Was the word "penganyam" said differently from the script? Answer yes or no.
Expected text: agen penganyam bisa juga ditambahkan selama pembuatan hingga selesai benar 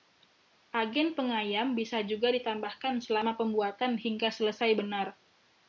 no